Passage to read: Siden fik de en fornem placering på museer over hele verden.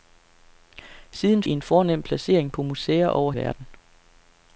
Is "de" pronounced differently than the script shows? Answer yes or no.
yes